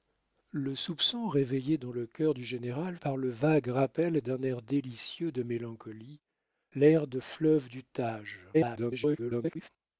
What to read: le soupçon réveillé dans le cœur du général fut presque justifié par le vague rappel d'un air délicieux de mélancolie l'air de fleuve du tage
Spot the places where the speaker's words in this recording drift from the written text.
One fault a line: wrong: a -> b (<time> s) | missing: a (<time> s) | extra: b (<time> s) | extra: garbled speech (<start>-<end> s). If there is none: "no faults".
missing: fut presque justifié (3.0 s)
extra: garbled speech (8.5-9.7 s)